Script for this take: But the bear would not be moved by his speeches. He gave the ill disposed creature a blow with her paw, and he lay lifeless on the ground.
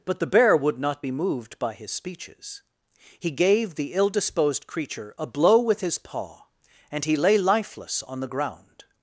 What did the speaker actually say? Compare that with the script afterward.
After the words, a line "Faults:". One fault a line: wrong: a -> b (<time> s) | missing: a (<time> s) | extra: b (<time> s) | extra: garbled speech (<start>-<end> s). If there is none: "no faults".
But the bear would not be moved by his speeches. He gave the ill disposed creature a blow with his paw, and he lay lifeless on the ground.
Faults:
wrong: her -> his (5.8 s)